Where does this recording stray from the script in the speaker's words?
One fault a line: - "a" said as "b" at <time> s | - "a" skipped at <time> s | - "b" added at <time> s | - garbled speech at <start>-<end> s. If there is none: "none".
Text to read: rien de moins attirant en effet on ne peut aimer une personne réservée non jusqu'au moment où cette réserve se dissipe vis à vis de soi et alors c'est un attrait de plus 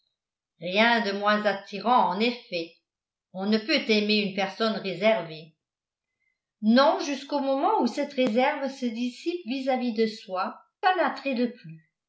- "et alors c'est" skipped at 10.6 s